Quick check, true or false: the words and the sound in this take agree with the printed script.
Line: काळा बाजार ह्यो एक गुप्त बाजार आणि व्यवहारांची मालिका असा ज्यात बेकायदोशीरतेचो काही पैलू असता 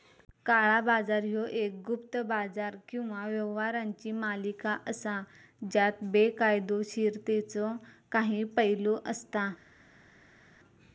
false